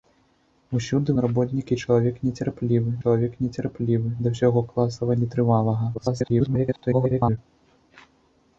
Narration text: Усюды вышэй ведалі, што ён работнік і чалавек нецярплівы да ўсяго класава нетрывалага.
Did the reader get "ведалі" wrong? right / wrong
wrong